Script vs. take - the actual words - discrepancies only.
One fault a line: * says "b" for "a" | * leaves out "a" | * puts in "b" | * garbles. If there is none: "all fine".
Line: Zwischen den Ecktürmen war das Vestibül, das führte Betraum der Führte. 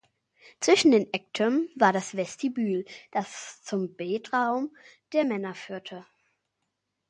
* says "zum" for "führte"
* puts in "Männer"